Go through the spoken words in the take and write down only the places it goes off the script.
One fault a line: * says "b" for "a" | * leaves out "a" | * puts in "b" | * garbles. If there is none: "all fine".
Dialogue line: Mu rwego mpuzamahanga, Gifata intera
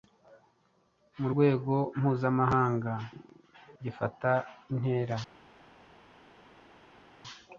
all fine